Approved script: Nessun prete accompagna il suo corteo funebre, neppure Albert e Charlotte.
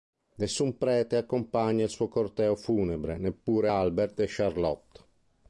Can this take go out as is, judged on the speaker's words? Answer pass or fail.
pass